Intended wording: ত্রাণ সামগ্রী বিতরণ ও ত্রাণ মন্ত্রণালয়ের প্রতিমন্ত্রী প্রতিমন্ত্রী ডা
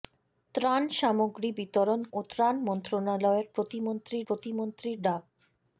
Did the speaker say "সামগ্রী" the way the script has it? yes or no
yes